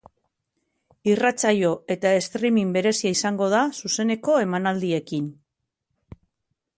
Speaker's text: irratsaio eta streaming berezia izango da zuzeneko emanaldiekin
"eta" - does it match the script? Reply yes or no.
yes